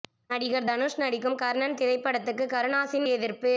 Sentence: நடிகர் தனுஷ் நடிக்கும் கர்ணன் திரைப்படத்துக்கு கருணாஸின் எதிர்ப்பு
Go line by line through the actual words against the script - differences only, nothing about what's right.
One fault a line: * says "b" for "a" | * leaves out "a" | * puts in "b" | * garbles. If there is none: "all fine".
all fine